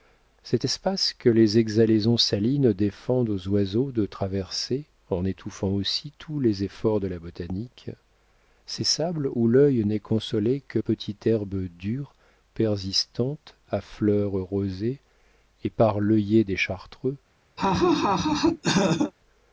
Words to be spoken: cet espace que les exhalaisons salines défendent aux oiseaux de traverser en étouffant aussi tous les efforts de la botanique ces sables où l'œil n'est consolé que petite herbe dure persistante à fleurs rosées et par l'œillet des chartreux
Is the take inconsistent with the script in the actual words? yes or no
no